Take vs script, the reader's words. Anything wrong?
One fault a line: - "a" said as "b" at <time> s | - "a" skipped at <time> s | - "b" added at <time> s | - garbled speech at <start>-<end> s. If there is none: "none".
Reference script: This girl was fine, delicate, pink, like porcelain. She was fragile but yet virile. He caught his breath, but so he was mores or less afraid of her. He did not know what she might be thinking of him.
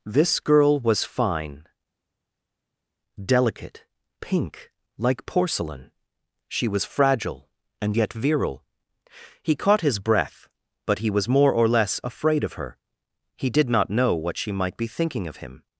- "but" said as "and" at 7.8 s
- "so" skipped at 11.0 s
- "mores" said as "more" at 11.3 s